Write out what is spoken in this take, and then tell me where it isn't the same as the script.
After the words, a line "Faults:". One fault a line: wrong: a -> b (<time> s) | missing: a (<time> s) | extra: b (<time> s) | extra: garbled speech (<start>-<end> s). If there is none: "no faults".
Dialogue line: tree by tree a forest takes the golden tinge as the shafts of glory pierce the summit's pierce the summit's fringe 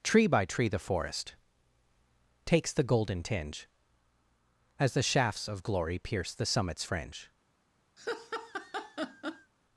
tree by tree the forest takes the golden tinge as the shafts of glory pierce the summit's fringe
Faults:
wrong: a -> the (0.7 s)
missing: pierce the summit's (6.8 s)